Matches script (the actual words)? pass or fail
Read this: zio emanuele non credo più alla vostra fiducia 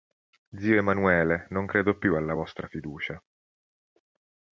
pass